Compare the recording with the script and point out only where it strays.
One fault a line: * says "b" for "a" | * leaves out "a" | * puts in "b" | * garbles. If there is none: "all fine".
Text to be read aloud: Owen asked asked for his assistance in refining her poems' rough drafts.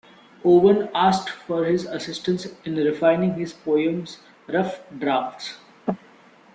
* leaves out "asked"
* says "his" for "her"